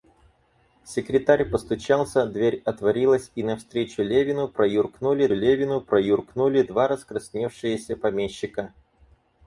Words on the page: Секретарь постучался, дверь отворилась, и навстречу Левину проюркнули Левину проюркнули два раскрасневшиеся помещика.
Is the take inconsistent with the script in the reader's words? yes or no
no